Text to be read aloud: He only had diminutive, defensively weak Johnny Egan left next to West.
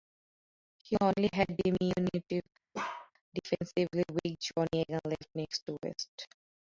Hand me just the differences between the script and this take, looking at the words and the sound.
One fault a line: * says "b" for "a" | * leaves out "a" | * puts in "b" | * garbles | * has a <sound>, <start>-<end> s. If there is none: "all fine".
* has a bark, 2.7-3.1 s